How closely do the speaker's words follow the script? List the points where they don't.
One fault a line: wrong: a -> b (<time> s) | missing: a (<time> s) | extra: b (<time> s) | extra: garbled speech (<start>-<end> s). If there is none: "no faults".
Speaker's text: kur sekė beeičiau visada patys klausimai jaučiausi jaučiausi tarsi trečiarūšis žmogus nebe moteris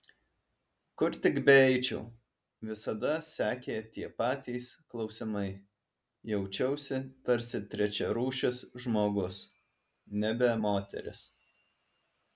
wrong: sekė -> tik (1.2 s)
extra: sekė tie (3.3 s)
missing: jaučiausi (7.0 s)